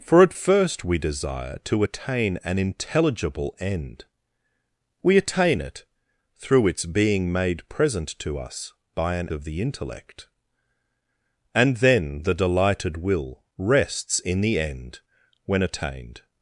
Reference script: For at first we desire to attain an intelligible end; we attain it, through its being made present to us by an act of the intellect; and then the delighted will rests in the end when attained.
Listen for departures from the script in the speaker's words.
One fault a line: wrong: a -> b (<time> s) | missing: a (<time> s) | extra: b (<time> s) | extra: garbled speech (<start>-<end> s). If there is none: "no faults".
missing: act (9.3 s)